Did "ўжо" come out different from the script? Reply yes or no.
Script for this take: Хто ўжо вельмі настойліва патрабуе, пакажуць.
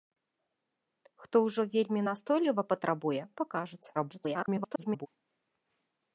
no